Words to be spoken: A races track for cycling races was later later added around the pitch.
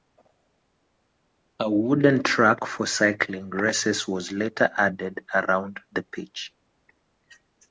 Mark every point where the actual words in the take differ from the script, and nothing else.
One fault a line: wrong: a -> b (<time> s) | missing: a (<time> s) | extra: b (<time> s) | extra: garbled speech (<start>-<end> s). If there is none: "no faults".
wrong: races -> wooden (1.7 s)
missing: later (4.7 s)